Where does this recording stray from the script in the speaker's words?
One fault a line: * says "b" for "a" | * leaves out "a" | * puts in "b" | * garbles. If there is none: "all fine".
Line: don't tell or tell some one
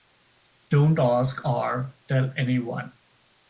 * says "ask" for "tell"
* says "any" for "some"